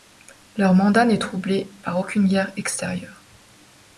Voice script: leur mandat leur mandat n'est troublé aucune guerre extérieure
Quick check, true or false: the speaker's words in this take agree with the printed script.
false